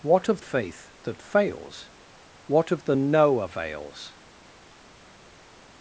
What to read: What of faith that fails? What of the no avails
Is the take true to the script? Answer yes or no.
yes